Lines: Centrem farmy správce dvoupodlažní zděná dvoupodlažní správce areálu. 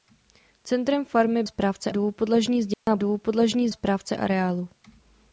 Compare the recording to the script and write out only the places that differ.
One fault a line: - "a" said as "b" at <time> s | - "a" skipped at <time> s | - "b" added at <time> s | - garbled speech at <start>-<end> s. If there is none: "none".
none